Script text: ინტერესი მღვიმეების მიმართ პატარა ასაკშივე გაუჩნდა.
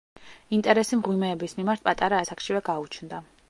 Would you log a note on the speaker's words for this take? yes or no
no